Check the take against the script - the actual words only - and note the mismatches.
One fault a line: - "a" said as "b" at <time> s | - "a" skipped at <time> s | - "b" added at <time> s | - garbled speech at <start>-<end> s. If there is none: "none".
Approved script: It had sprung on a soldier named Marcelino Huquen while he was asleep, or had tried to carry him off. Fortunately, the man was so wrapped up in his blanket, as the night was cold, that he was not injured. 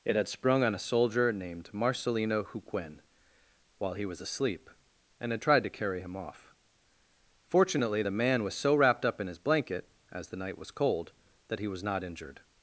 - "or" said as "and" at 5.2 s